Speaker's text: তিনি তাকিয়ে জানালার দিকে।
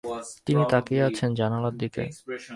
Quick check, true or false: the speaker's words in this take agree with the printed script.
false